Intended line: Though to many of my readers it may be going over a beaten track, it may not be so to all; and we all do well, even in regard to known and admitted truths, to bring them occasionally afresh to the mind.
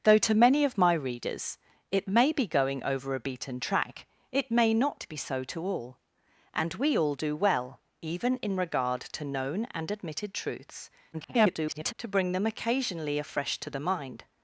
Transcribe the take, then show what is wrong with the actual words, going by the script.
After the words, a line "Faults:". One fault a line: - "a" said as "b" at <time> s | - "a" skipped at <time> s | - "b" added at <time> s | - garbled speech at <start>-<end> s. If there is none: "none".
Though to many of my readers it may be going over a beaten track, it may not be so to all; and we all do well, even in regard to known and admitted truths, [garbled] to bring them occasionally afresh to the mind.
Faults:
- garbled speech at 11.1-11.9 s